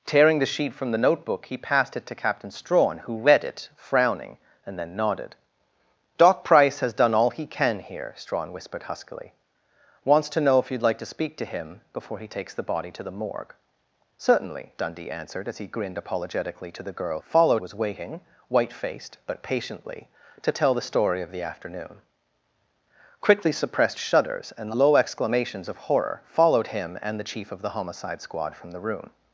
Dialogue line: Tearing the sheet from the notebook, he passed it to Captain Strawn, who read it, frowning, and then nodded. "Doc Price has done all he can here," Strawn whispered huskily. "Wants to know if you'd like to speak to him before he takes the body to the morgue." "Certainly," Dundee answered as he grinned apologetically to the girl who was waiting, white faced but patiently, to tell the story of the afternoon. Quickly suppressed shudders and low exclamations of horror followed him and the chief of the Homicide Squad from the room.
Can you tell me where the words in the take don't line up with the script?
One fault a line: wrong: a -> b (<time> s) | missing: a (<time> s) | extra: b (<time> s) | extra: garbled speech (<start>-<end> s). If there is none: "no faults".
wrong: who -> followed (17.2 s)